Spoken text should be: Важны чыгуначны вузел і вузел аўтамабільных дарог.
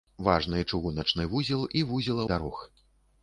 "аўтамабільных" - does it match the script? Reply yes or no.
no